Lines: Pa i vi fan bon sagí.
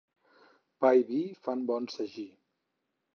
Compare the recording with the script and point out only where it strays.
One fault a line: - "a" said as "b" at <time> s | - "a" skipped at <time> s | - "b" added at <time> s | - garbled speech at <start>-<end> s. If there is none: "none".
none